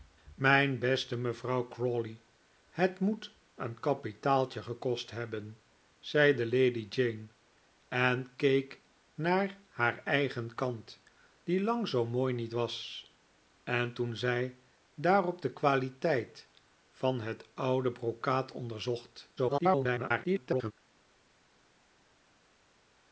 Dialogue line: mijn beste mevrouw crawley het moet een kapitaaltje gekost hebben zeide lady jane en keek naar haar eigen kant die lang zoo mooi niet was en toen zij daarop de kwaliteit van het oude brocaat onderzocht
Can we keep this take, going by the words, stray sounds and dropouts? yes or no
no